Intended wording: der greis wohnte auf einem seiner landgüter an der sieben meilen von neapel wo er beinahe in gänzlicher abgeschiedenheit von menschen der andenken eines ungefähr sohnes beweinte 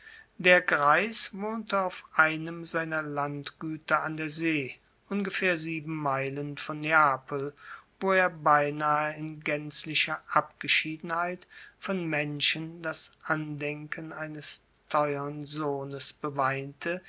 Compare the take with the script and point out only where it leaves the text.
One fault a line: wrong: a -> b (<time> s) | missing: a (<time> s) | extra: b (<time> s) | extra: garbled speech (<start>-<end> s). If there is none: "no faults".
extra: see ungefähr (4.3 s)
wrong: der -> das (12.8 s)
wrong: ungefähr -> teuern (14.9 s)